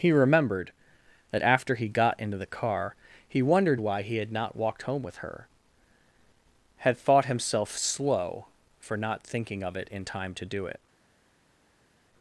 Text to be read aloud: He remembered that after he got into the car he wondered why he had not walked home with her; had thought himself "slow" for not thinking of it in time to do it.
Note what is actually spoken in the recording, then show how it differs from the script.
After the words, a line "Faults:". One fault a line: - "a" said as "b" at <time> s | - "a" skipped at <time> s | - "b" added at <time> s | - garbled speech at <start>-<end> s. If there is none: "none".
He remembered that after he got into the car he wondered why he had not walked home with her; had thought himself "slow" for not thinking of it in time to do it.
Faults:
none